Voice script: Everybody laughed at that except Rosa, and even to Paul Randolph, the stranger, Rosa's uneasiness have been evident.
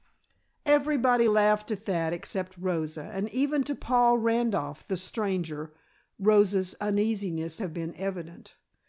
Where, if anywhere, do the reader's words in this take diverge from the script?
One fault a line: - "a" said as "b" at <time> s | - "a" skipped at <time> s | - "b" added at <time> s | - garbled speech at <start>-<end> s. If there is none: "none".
none